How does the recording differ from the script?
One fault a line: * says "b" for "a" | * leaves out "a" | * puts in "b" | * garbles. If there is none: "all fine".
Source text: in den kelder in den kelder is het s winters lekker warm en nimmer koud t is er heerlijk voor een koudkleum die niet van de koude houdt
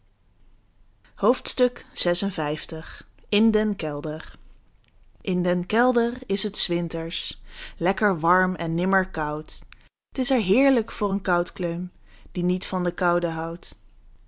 all fine